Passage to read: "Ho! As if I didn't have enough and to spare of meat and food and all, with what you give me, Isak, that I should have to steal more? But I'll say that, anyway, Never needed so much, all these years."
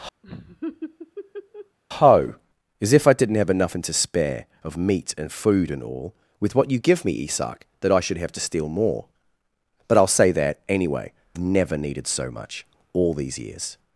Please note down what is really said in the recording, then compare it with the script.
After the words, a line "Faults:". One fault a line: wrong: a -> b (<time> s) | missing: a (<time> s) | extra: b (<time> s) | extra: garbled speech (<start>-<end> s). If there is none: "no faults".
"Ho! As if I didn't have enough and to spare of meat and food and all, with what you give me, Isak, that I should have to steal more? But I'll say that, anyway, Never needed so much, all these years."
Faults:
no faults